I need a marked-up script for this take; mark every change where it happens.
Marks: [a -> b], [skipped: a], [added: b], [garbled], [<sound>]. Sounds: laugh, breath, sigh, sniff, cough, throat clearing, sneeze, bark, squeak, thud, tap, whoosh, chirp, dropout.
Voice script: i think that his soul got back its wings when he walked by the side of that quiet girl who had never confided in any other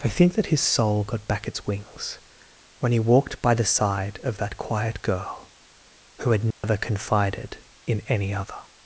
i think that his soul got back its wings when he walked by the side of that quiet girl who had never [dropout] confided in any other